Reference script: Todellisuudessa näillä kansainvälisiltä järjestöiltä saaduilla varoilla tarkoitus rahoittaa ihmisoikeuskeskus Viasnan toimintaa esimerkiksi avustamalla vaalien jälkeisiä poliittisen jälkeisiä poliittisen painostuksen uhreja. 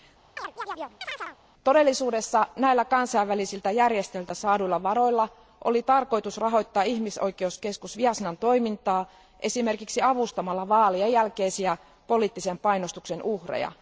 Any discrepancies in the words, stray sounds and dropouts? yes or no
yes